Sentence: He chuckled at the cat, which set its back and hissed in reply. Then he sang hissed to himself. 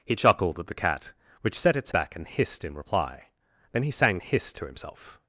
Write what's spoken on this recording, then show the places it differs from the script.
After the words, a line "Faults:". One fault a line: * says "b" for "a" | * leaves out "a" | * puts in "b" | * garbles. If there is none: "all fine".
He chuckled at the cat, which set its back and hissed in reply. Then he sang hissed to himself.
Faults:
all fine